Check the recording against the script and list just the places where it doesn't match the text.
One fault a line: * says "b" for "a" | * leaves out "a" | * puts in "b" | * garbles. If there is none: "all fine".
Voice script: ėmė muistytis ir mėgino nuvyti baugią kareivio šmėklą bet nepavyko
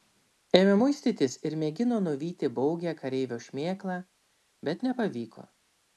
all fine